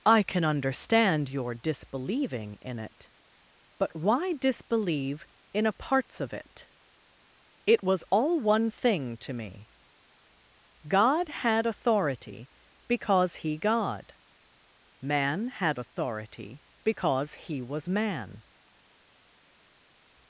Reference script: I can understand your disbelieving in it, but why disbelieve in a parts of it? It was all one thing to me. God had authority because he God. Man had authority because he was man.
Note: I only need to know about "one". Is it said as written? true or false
true